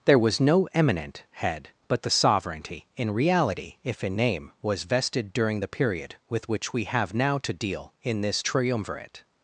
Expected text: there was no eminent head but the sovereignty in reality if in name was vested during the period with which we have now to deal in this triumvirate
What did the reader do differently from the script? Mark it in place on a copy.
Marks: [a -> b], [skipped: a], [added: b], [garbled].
there was no eminent head but the sovereignty in reality if in name was vested during the period with which we have now to deal in this triumvirate